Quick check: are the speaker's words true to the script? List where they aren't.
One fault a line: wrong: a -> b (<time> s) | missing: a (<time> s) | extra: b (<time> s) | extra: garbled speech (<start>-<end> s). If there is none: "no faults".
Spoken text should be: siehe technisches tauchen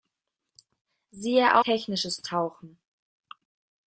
no faults